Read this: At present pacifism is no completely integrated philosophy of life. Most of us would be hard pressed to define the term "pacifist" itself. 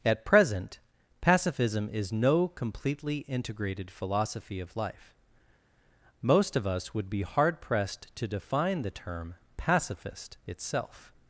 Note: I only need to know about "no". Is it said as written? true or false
true